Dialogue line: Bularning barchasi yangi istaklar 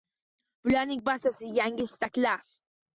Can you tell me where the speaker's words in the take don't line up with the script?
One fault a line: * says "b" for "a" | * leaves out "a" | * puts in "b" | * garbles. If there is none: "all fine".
all fine